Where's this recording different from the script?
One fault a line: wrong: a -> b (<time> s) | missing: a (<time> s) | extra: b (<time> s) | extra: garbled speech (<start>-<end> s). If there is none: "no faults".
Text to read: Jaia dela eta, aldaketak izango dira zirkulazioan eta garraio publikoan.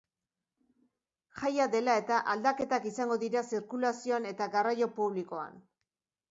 no faults